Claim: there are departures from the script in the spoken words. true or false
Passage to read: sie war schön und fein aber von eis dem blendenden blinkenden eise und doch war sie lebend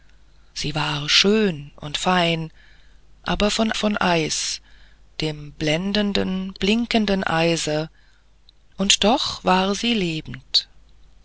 true